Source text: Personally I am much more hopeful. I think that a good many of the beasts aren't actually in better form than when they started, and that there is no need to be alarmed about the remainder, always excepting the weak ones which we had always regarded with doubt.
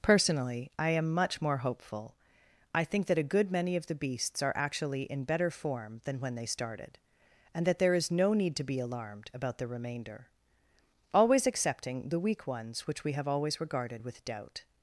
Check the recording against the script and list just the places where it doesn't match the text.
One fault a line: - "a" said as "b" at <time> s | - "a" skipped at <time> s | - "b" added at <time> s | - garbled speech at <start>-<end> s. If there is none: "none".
- "aren't" said as "are" at 4.4 s
- "had" said as "have" at 13.1 s